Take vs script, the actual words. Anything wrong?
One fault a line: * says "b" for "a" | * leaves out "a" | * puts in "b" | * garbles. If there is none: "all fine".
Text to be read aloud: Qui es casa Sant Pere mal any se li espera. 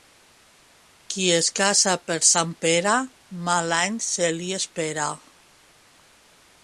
* puts in "per"